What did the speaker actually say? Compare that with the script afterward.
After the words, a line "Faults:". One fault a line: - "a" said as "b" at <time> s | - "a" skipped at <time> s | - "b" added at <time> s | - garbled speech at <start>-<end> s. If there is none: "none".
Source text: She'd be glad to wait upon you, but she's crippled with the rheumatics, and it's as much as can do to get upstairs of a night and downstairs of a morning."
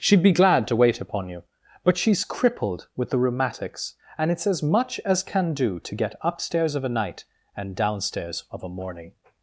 She'd be glad to wait upon you, but she's crippled with the rheumatics, and it's as much as can do to get upstairs of a night and downstairs of a morning."
Faults:
none